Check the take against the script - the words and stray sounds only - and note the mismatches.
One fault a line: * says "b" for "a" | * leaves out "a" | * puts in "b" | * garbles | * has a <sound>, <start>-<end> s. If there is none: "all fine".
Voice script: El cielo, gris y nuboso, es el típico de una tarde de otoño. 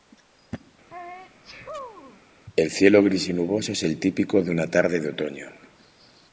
* has a sneeze, 0.9-2.2 s